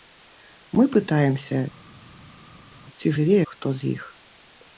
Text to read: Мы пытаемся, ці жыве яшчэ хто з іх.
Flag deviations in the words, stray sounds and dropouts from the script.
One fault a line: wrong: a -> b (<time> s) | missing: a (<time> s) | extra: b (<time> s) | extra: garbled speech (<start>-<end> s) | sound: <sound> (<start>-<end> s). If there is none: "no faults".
missing: яшчэ (3.4 s)